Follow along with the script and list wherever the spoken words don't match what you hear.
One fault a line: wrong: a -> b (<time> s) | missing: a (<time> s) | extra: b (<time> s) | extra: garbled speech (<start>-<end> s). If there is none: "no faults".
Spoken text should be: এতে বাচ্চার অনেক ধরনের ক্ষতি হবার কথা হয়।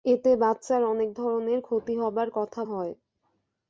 no faults